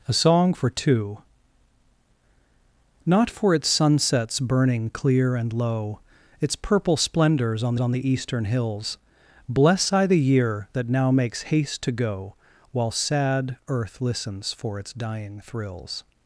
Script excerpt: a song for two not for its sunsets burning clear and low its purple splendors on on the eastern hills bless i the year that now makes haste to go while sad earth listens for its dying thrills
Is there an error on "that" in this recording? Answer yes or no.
no